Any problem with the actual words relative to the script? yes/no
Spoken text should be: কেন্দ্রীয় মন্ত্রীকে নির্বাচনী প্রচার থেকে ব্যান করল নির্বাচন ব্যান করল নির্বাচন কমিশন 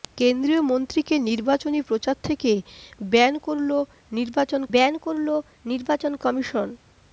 no